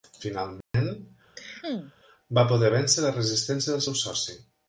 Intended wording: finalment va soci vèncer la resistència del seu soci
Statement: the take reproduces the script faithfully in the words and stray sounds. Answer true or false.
false